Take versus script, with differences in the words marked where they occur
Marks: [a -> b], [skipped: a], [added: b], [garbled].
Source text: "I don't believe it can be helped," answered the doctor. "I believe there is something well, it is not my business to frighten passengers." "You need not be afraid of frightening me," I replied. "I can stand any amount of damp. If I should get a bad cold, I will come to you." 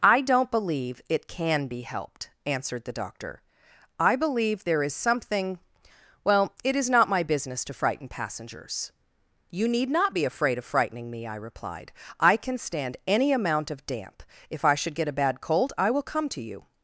"I don't believe it can be helped," answered the doctor. "I believe there is something well, it is not my business to frighten passengers." "You need not be afraid of frightening me," I replied. "I can stand any amount of damp. If I should get a bad cold, I will come to you."